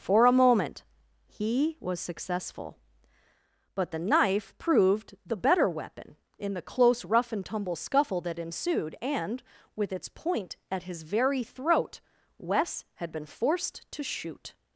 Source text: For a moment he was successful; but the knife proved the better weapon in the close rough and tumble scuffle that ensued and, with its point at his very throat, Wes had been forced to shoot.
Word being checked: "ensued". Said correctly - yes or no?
yes